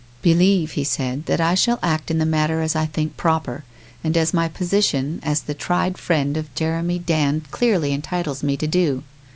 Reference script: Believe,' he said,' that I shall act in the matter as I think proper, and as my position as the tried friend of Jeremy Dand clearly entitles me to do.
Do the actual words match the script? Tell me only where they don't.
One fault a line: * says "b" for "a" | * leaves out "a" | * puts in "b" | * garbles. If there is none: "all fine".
all fine